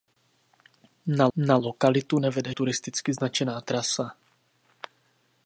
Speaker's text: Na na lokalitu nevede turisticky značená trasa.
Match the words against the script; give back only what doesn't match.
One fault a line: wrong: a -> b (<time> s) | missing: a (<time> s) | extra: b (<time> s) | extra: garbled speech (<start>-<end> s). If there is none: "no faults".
no faults